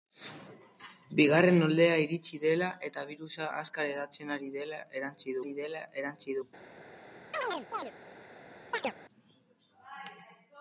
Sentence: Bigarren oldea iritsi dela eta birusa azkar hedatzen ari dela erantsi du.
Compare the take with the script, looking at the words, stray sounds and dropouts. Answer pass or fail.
fail